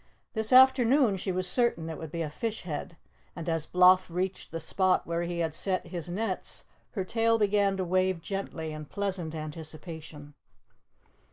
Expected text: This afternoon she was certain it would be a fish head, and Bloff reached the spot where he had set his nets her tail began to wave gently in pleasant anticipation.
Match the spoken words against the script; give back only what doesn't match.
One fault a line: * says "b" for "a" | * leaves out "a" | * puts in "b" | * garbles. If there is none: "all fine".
* puts in "as"